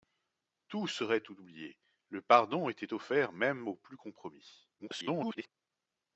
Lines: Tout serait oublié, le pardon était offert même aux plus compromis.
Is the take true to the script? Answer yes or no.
no